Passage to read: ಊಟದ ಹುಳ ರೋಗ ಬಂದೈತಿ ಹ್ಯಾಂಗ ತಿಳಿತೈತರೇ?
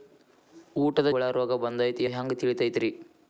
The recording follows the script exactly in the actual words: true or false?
true